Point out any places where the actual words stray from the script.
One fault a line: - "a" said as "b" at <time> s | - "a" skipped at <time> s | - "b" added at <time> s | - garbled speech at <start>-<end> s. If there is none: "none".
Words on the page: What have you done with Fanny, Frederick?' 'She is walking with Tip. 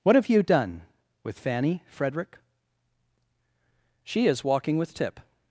none